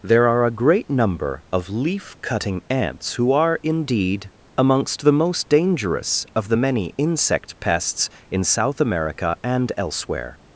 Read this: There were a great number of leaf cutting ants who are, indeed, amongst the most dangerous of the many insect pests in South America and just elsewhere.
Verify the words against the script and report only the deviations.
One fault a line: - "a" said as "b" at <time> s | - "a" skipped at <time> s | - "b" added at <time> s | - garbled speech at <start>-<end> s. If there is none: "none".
- "were" said as "are" at 0.3 s
- "just" skipped at 9.7 s